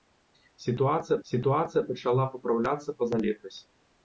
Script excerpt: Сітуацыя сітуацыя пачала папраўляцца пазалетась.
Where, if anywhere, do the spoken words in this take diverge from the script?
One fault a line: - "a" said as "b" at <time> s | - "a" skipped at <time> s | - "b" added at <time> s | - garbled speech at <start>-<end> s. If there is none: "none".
none